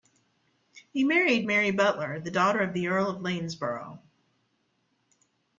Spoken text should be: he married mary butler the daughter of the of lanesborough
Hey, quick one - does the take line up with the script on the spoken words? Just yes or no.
no